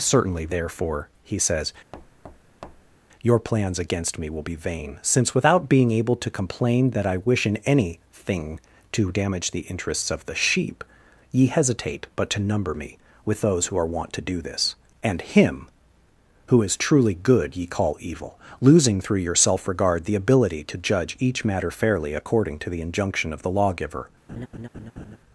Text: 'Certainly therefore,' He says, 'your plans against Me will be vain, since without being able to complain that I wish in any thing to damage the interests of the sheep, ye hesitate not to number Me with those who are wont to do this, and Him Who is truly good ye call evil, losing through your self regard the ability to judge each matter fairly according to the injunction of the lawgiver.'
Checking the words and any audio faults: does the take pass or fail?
fail